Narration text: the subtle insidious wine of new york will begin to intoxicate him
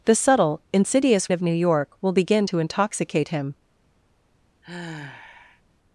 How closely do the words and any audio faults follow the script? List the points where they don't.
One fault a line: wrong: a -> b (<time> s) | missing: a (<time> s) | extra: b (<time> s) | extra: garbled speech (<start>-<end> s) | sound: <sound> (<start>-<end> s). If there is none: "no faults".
missing: wine (1.3 s)
sound: sigh (4.6-5.6 s)